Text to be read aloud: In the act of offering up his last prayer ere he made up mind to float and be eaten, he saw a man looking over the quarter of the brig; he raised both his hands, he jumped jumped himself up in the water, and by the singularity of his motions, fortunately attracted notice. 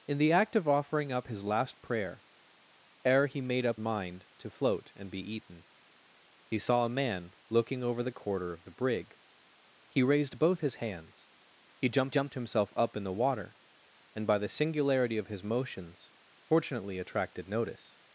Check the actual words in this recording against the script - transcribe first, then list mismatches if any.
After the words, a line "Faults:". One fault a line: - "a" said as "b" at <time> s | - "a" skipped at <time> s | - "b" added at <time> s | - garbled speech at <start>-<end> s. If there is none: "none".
In the act of offering up his last prayer ere he made up mind to float and be eaten, he saw a man looking over the quarter of the brig; he raised both his hands, he jumped jumped himself up in the water, and by the singularity of his motions, fortunately attracted notice.
Faults:
none